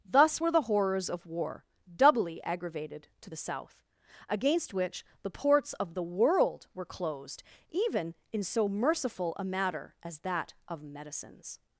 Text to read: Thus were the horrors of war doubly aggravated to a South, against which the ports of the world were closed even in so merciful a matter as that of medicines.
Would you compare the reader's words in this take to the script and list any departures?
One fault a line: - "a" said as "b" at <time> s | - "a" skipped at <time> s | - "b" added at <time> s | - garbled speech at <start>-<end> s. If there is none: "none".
- "a" said as "the" at 3.3 s